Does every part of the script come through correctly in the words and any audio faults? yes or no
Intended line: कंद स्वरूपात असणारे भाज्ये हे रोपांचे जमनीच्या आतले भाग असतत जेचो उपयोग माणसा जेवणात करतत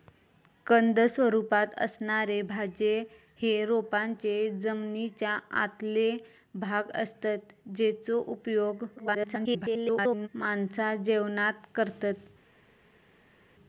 no